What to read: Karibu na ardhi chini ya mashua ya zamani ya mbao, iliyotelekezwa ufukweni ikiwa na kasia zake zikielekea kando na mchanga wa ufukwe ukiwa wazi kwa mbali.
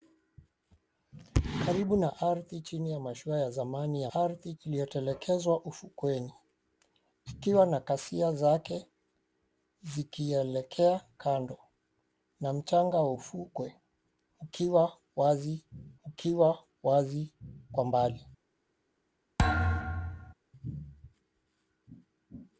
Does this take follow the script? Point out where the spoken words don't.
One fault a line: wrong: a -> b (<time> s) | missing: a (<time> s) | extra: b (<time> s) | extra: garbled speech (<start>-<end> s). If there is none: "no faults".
wrong: mbao -> ardhi (4.1 s)
extra: ukiwa wazi (16.0 s)